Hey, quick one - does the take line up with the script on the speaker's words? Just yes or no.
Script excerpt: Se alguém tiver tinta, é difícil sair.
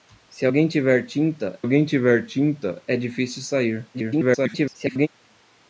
no